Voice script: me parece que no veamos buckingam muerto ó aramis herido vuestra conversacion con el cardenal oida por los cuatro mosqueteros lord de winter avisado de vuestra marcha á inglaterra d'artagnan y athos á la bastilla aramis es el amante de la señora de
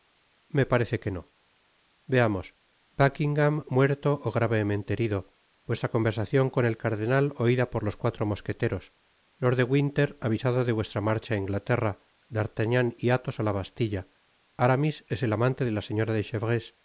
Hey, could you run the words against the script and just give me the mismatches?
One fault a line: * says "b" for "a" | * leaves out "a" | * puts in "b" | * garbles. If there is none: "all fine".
* says "gravemente" for "aramis"